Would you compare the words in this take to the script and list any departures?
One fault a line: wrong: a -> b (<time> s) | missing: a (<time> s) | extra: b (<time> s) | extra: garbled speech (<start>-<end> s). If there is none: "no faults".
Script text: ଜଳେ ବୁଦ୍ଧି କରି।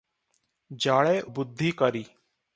no faults